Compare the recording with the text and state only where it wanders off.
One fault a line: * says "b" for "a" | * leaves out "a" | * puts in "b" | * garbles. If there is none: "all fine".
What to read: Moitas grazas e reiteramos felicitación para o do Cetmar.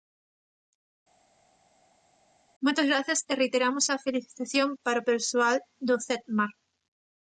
* puts in "a"
* puts in "persoal"